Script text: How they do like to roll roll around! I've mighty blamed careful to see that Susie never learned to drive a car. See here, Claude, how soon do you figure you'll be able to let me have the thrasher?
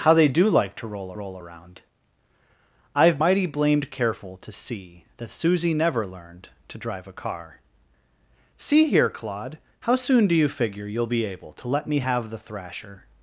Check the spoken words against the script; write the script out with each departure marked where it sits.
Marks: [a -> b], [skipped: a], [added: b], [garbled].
How they do like to roll roll around! I've mighty blamed careful to see that Susie never learned to drive a car. See here, Claude, how soon do you figure you'll be able to let me have the thrasher?